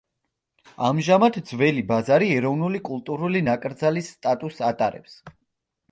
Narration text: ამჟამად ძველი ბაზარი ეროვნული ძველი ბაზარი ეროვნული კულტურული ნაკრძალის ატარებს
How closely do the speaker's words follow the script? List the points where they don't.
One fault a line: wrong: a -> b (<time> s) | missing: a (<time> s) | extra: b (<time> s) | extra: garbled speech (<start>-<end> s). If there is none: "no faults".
missing: ძველი ბაზარი ეროვნული (2.8 s)
extra: სტატუსს (4.2 s)